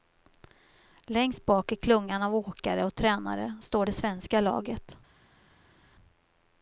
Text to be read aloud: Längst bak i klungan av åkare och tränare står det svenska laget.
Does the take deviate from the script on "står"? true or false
false